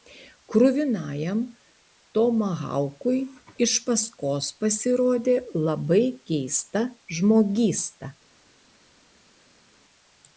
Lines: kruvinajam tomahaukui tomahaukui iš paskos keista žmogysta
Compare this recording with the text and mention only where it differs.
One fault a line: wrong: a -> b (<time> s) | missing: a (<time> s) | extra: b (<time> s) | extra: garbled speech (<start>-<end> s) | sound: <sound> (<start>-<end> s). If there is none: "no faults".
missing: tomahaukui (3.2 s)
extra: pasirodė labai (4.6 s)